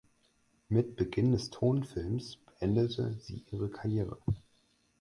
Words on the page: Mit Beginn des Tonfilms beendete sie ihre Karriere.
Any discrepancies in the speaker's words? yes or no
no